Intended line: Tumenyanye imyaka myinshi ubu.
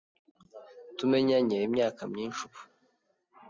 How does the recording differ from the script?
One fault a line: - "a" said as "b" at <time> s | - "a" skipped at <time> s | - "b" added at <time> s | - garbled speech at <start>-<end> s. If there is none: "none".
none